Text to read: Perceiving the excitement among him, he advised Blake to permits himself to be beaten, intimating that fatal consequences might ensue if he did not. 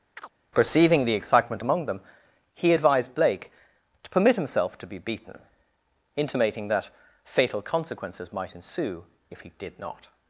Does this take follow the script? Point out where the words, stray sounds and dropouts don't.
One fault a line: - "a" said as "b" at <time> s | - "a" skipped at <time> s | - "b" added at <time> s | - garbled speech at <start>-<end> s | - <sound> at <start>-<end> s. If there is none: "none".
- chirp at 0.2-0.3 s
- "him" said as "them" at 1.9 s
- "permits" said as "permit" at 4.1 s